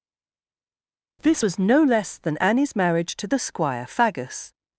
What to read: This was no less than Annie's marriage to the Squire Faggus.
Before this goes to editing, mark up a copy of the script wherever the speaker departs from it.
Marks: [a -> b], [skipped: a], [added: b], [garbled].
This was no less than Annie's marriage to the Squire Faggus.